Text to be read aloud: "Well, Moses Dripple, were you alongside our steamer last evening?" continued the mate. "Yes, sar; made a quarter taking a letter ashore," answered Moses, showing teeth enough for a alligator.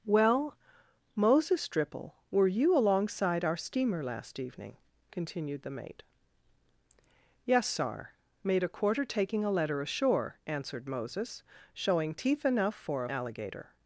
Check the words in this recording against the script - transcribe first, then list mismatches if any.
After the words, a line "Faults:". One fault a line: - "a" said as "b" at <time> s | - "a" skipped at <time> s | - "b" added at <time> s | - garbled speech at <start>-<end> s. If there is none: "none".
"Well, Moses Dripple, were you alongside our steamer last evening?" continued the mate. "Yes, sar; made a quarter taking a letter ashore," answered Moses, showing teeth enough for a alligator.
Faults:
none